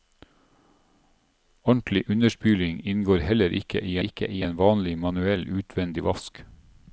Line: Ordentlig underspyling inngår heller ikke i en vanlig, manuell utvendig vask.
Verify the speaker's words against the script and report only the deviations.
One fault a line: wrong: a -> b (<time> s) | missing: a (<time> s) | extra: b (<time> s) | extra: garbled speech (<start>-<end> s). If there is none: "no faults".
extra: ikke i (4.1 s)